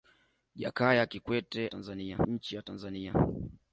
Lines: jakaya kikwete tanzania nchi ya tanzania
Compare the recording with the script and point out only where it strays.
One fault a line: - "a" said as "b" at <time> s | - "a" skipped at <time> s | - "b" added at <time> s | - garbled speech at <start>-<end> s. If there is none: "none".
none